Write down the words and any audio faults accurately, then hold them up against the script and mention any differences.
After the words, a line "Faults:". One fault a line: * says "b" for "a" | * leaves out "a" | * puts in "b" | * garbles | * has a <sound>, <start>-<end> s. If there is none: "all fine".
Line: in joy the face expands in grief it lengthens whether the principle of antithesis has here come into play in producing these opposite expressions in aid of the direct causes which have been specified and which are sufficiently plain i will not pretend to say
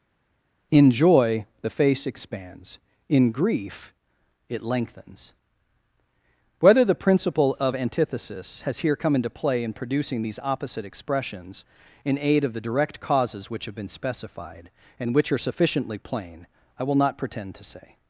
in joy the face expands in grief it lengthens whether the principle of antithesis has here come into play in producing these opposite expressions in aid of the direct causes which have been specified and which are sufficiently plain i will not pretend to say
Faults:
all fine